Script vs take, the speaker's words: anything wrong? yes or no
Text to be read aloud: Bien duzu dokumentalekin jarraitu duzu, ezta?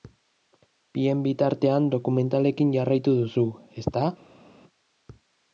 yes